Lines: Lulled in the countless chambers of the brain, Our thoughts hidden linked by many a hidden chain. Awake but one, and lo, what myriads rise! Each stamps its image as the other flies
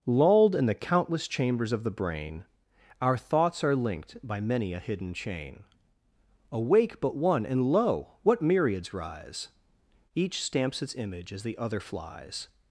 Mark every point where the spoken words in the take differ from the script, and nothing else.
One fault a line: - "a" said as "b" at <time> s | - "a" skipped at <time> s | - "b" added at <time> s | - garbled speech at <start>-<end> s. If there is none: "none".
- "hidden" said as "are" at 3.6 s